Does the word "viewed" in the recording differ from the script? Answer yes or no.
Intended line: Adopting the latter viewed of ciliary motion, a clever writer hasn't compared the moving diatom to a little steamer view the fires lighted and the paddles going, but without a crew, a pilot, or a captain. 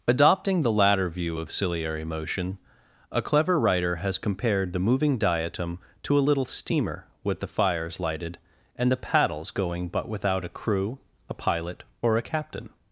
yes